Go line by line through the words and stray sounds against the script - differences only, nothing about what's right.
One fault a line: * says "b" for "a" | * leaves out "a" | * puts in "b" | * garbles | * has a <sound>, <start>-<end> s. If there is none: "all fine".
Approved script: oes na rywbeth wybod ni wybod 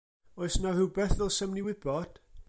* says "ddylsem" for "wybod"